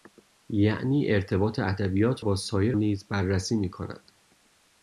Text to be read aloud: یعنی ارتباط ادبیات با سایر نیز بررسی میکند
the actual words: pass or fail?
pass